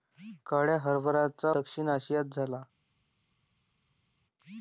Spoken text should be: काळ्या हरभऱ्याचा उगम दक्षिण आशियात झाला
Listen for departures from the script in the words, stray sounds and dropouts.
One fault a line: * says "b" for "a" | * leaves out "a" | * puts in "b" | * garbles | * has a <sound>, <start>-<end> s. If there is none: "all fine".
* leaves out "उगम"